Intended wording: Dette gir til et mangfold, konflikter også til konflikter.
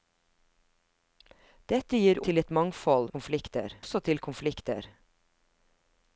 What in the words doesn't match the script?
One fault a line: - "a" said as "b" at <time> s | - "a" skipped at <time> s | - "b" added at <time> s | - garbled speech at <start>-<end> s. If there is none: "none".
none